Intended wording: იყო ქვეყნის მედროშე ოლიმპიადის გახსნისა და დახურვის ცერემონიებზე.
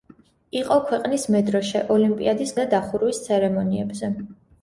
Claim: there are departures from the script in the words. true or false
true